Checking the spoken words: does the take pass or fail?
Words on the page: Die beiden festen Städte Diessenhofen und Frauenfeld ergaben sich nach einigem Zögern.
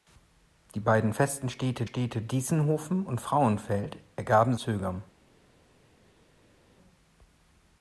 fail